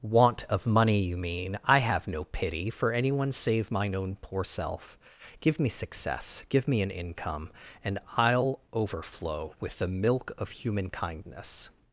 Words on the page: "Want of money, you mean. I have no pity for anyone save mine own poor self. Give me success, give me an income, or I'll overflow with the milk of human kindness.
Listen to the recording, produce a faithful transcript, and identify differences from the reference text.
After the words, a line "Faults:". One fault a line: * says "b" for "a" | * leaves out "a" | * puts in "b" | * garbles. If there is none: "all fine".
"Want of money, you mean. I have no pity for anyone save mine own poor self. Give me success, give me an income, and I'll overflow with the milk of human kindness.
Faults:
* says "and" for "or"